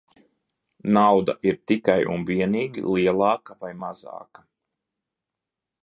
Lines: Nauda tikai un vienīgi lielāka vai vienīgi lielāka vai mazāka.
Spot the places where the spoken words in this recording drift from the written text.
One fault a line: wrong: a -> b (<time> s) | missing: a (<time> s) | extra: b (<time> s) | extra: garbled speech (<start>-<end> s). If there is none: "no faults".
extra: ir (1.5 s)
missing: vienīgi lielāka vai (3.7 s)